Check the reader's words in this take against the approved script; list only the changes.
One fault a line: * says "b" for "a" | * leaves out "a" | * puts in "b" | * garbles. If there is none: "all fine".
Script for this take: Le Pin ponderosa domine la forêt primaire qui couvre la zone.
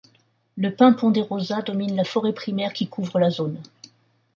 all fine